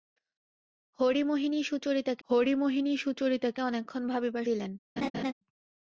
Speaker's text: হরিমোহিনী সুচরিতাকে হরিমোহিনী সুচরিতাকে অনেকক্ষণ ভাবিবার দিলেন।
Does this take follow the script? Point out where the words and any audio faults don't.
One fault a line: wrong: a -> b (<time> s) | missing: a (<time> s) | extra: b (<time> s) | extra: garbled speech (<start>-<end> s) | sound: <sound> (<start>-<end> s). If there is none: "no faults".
sound: laugh (5.0-5.3 s)